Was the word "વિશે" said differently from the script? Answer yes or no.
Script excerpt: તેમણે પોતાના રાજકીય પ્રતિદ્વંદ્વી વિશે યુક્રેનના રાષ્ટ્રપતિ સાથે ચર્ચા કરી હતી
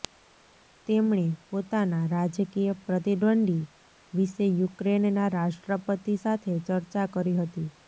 no